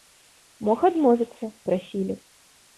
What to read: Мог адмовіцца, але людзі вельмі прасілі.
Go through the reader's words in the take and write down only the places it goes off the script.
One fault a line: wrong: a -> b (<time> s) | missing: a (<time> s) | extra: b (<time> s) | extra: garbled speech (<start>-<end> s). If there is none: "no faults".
missing: але людзі вельмі (1.4 s)